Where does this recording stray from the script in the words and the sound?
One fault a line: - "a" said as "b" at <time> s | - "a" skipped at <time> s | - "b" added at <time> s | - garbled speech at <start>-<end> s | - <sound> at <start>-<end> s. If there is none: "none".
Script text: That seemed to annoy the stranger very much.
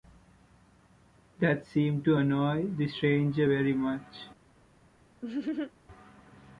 - laugh at 5.2-5.7 s